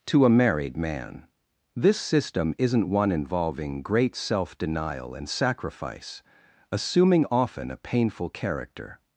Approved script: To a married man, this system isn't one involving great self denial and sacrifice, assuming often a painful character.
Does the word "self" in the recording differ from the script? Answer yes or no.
no